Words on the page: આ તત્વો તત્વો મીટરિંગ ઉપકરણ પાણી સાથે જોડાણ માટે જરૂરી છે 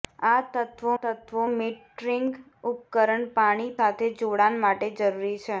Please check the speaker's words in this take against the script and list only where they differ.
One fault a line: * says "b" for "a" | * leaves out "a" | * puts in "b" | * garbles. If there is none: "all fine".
all fine